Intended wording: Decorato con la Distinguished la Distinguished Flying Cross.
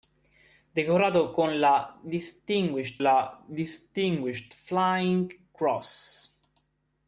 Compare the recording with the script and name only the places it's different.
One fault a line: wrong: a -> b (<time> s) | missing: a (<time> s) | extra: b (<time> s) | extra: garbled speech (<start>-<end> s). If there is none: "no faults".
no faults